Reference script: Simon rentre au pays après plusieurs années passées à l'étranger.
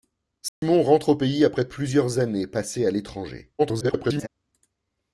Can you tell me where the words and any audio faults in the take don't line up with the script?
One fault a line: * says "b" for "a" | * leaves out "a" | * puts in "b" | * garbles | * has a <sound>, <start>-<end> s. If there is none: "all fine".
* has a dropout, 0.5-0.6 s
* garbles